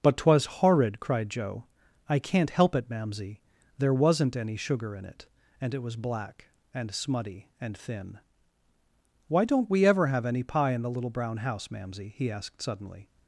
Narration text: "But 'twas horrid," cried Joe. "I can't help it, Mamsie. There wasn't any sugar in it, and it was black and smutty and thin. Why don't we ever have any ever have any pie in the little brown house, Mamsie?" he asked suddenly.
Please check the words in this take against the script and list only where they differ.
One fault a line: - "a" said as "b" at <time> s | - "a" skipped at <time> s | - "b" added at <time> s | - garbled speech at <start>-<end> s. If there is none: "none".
- "ever have any" skipped at 10.4 s